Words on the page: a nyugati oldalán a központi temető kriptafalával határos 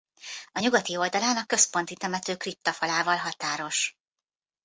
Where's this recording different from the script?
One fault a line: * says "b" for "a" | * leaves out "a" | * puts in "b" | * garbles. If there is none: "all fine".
all fine